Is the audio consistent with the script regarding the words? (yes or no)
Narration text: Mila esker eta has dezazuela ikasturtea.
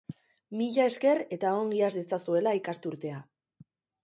no